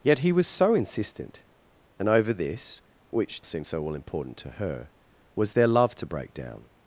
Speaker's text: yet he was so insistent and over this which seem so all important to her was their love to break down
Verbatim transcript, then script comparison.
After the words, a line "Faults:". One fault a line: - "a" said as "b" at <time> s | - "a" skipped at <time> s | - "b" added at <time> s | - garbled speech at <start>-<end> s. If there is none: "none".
yet he was so insistent and over this which seem so all important to her was their love to break down
Faults:
none